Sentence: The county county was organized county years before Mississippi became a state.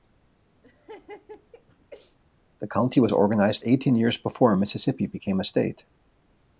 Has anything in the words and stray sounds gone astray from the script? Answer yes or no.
yes